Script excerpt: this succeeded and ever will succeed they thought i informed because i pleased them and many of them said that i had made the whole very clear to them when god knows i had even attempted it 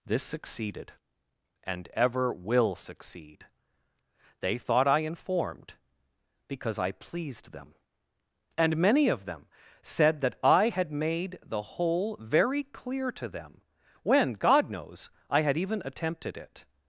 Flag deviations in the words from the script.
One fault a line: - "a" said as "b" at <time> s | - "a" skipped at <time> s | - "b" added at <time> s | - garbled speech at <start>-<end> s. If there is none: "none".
none